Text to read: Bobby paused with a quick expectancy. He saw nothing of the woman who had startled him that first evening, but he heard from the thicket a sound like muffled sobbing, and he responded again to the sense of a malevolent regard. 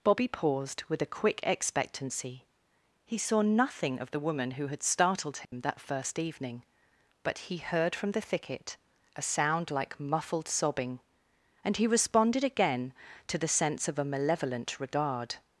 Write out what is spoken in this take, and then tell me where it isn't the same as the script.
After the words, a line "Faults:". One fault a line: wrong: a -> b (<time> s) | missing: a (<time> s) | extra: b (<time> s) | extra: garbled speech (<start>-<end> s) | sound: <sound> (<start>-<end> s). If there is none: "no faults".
Bobby paused with a quick expectancy. He saw nothing of the woman who had startled him that first evening, but he heard from the thicket a sound like muffled sobbing, and he responded again to the sense of a malevolent regard.
Faults:
sound: dropout (5.4-5.5 s)